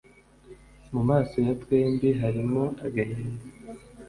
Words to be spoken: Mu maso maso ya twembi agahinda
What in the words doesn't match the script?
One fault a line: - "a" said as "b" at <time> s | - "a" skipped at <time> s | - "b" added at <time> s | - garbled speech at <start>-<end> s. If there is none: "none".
- "maso" skipped at 1.3 s
- "harimo" added at 2.2 s